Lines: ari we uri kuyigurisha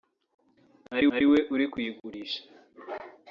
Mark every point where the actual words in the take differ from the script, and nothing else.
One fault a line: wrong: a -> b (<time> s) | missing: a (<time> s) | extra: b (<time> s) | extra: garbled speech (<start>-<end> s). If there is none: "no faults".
extra: ari (1.1 s)